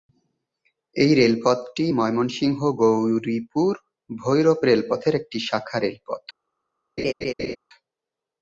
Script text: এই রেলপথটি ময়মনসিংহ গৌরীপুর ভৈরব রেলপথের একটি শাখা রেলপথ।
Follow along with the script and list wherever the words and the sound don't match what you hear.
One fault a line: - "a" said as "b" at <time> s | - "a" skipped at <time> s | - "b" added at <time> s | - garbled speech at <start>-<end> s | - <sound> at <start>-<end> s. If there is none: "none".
- laugh at 7.0-7.6 s